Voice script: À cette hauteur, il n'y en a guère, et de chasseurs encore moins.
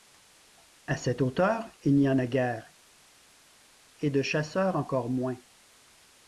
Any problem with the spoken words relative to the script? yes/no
no